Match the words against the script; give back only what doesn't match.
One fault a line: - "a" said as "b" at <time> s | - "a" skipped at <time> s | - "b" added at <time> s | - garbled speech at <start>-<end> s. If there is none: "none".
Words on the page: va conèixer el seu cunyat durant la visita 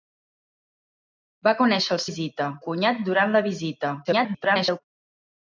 - "seu" said as "visita" at 2.1 s
- garbled speech at 4.0-4.8 s